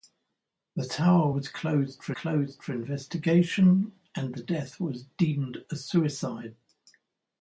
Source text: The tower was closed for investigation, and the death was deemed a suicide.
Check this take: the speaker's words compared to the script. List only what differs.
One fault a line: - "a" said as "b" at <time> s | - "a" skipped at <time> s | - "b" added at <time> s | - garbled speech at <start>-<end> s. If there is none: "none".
- "closed for" added at 2.1 s